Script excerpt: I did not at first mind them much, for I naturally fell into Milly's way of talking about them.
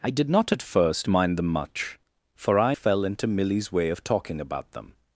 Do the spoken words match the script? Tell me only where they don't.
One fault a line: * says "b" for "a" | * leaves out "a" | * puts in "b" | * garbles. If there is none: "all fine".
* leaves out "naturally"